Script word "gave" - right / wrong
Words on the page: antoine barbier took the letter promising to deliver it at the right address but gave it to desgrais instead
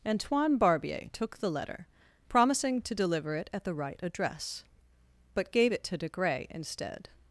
right